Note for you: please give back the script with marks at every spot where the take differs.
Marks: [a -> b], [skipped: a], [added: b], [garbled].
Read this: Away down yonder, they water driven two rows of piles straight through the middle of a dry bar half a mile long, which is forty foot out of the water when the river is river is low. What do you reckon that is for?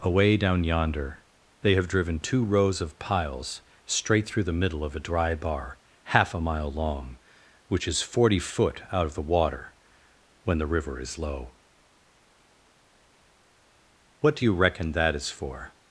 Away down yonder, they [water -> have] driven two rows of piles straight through the middle of a dry bar half a mile long, which is forty foot out of the water when the river is [skipped: river is] low. What do you reckon that is for?